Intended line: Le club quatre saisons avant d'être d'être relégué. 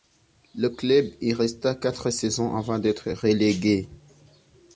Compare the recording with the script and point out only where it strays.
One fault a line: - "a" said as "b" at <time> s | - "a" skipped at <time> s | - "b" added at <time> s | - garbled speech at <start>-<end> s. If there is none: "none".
- "y resta" added at 1.2 s
- "d'être" skipped at 3.1 s